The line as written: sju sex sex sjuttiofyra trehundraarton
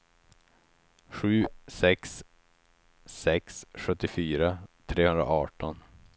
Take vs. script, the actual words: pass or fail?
pass